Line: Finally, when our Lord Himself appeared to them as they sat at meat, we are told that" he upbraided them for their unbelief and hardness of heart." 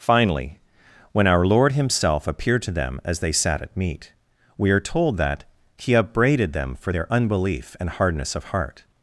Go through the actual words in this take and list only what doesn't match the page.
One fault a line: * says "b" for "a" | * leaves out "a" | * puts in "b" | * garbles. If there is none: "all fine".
all fine